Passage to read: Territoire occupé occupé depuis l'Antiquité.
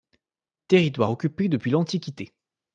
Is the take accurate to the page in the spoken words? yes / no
no